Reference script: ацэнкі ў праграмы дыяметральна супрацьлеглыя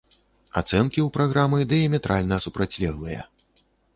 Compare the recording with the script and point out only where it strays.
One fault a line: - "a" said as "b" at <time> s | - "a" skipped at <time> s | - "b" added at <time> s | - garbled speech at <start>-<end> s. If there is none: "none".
none